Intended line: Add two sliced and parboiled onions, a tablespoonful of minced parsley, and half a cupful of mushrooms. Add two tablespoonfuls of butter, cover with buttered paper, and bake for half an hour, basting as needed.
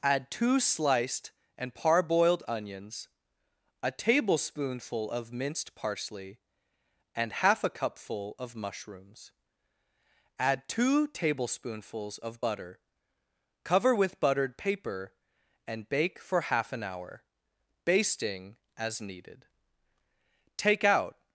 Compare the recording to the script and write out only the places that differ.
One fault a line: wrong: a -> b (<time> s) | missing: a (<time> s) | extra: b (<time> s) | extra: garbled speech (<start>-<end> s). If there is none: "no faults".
extra: Take out (20.6 s)